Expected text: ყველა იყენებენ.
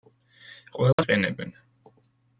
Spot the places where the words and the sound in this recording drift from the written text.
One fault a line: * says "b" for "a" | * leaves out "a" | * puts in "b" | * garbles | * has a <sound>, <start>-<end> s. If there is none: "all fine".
* has a dropout, 0.9-1.0 s